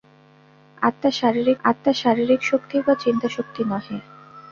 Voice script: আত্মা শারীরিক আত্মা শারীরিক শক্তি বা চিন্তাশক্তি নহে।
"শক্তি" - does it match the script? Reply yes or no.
yes